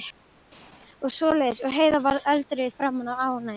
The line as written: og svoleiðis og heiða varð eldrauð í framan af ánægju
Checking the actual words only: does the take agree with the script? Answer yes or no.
yes